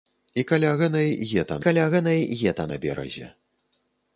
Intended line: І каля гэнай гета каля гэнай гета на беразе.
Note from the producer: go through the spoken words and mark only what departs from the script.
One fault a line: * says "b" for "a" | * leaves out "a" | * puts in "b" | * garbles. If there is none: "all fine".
all fine